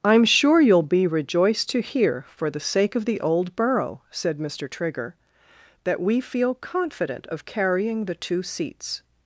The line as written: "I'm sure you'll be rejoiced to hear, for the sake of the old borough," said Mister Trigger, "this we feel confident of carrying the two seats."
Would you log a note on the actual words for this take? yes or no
yes